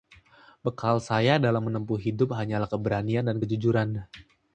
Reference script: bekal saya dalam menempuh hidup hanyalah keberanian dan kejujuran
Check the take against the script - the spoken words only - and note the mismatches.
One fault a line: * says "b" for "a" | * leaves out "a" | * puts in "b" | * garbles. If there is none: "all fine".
all fine